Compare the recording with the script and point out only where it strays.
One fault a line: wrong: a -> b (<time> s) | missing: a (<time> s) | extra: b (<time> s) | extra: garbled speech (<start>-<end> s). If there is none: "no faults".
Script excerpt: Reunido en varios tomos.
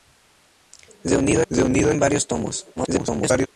extra: reunido (1.5 s)
extra: garbled speech (2.8-3.5 s)